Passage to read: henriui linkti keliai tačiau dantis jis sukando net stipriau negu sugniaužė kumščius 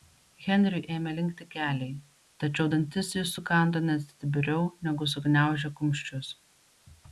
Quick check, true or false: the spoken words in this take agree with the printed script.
false